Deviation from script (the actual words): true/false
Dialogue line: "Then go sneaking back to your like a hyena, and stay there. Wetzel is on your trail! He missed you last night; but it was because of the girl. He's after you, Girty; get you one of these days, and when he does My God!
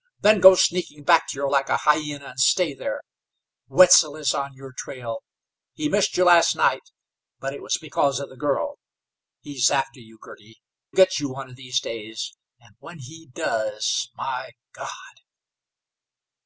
false